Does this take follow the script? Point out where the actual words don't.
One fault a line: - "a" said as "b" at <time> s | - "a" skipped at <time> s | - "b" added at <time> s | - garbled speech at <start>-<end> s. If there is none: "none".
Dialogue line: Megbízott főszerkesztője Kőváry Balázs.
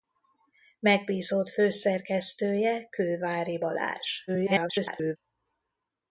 - garbled speech at 4.3-5.2 s